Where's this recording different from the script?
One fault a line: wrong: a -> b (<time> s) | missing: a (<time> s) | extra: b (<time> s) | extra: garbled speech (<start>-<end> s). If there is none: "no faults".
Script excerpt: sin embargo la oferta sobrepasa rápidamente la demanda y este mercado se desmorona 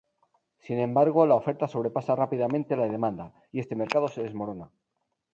no faults